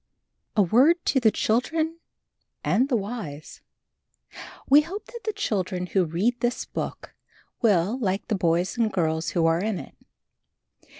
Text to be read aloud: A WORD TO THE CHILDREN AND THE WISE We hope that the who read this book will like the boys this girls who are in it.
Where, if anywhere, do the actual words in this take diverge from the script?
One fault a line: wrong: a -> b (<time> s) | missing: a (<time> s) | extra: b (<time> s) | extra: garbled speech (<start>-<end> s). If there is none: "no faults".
extra: children (5.3 s)
wrong: this -> and (8.8 s)